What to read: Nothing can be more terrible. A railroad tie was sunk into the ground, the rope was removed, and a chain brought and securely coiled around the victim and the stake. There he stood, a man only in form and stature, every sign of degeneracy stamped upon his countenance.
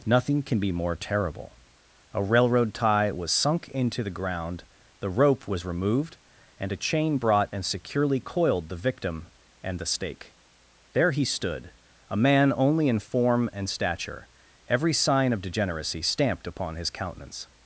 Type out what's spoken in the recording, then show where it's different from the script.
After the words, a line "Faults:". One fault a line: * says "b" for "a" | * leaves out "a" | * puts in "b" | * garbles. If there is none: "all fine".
Nothing can be more terrible. A railroad tie was sunk into the ground, the rope was removed, and a chain brought and securely coiled the victim and the stake. There he stood, a man only in form and stature, every sign of degeneracy stamped upon his countenance.
Faults:
* leaves out "around"